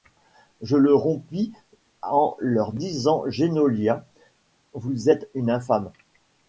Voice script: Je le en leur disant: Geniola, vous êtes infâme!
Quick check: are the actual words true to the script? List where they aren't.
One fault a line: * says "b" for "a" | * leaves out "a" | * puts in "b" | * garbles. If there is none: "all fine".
* puts in "rompis"
* puts in "une"